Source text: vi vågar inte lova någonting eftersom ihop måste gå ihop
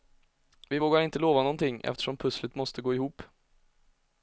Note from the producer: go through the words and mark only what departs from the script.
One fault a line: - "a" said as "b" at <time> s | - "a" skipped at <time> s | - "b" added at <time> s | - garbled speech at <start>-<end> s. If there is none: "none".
- "ihop" said as "pusslet" at 2.2 s